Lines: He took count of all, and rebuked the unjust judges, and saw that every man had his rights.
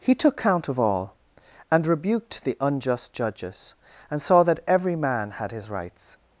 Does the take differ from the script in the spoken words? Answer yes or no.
no